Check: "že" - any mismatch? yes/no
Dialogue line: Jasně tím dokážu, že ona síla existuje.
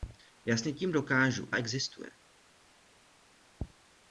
yes